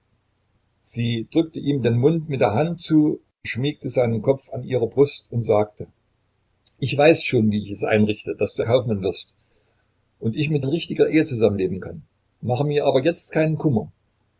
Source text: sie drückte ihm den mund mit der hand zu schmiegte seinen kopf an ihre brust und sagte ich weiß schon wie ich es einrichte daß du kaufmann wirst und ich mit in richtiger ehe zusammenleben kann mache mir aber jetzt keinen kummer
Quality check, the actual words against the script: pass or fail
pass